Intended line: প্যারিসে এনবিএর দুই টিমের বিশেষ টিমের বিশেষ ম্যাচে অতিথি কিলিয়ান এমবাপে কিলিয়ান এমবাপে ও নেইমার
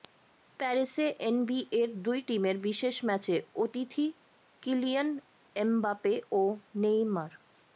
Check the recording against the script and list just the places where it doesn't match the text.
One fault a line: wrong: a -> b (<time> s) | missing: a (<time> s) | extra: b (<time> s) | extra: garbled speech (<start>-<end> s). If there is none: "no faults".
missing: টিমের বিশেষ (3.0 s)
missing: কিলিয়ান এমবাপে (6.1 s)